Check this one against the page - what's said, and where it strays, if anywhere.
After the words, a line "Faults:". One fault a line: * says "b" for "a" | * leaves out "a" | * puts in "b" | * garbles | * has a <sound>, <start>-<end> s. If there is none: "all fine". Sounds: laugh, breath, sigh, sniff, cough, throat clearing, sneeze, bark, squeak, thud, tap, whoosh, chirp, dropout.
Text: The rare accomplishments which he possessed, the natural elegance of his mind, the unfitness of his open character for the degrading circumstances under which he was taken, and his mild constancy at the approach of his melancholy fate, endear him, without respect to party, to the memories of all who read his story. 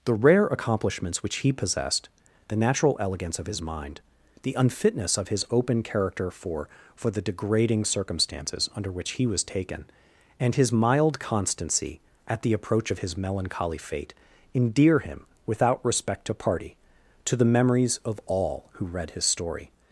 The rare accomplishments which he possessed, the natural elegance of his mind, the unfitness of his open character for for the degrading circumstances under which he was taken, and his mild constancy at the approach of his melancholy fate, endear him, without respect to party, to the memories of all who read his story.
Faults:
* puts in "for"